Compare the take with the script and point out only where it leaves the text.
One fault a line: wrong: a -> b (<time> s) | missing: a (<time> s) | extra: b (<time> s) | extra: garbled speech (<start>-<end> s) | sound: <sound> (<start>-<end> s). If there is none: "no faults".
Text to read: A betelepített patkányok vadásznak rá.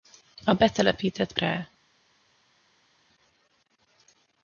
missing: patkányok vadásznak (1.3 s)